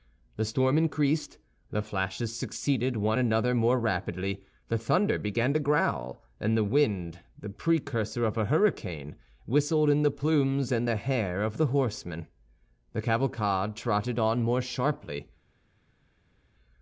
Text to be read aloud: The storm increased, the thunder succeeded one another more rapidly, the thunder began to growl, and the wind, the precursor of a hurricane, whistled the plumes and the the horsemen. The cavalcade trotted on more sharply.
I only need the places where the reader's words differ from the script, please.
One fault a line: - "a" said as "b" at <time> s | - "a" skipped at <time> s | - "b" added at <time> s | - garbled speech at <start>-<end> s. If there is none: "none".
- "thunder" said as "flashes" at 1.8 s
- "in" added at 9.9 s
- "hair of" added at 11.0 s